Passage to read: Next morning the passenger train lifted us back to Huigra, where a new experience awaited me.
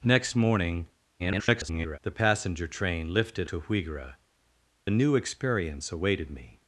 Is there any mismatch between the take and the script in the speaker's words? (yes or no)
yes